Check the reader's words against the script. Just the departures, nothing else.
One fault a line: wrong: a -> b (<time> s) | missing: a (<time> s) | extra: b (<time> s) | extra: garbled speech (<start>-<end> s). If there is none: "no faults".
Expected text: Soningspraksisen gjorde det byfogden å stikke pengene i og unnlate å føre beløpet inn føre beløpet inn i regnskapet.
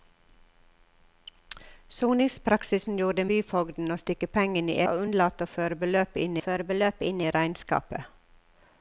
no faults